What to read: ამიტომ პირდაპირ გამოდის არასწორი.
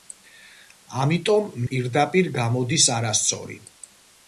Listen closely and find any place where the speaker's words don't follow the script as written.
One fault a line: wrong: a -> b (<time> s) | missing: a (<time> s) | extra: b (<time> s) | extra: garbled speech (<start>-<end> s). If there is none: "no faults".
no faults